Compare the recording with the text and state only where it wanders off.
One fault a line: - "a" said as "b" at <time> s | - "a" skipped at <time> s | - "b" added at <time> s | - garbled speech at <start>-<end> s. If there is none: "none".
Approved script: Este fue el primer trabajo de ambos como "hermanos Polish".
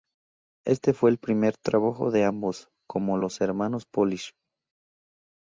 - "los" added at 3.2 s